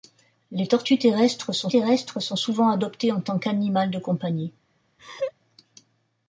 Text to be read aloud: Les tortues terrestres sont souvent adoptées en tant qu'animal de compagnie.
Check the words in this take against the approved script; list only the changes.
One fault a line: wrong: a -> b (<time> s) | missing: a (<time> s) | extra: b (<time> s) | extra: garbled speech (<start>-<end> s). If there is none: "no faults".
extra: terrestres sont (1.7 s)